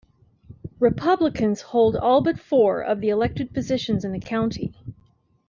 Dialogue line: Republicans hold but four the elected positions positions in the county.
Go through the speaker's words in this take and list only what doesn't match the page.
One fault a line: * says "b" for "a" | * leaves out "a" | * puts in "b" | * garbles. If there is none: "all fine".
* puts in "all"
* puts in "of"
* leaves out "positions"